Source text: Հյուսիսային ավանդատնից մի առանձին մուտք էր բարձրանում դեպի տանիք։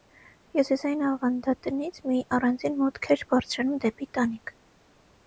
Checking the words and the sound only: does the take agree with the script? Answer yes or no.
yes